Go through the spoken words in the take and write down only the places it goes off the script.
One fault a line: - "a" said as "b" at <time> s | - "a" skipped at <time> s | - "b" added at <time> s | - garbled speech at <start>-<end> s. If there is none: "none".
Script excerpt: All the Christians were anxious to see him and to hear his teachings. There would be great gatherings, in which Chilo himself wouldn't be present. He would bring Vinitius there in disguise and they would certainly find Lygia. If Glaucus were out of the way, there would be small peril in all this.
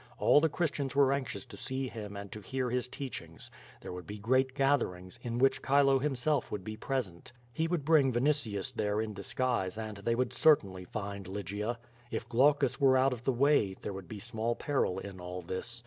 - "wouldn't" said as "would" at 6.5 s